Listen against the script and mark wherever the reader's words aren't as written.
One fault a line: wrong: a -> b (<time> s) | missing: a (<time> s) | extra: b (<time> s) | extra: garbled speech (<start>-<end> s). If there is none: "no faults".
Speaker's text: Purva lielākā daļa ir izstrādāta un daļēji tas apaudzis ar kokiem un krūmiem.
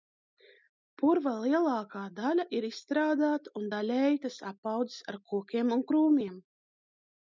no faults